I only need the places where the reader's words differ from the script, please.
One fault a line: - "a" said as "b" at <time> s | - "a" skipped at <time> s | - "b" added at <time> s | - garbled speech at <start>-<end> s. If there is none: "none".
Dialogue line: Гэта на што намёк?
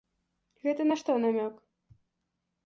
none